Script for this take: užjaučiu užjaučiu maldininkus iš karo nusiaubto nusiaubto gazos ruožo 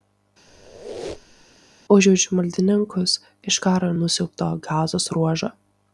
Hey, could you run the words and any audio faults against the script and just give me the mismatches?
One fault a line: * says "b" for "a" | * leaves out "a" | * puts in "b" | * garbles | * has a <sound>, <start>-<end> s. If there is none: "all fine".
* has a squeak, 0.5-1.6 s
* leaves out "užjaučiu"
* leaves out "nusiaubto"